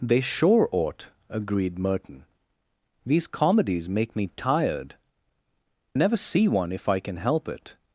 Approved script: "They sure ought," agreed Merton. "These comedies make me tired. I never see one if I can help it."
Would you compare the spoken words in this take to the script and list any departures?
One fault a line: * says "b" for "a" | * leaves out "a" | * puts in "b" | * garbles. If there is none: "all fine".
* leaves out "I"